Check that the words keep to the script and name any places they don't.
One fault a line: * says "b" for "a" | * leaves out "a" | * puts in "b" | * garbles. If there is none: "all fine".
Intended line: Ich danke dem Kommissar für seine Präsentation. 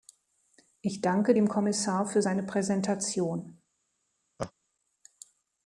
all fine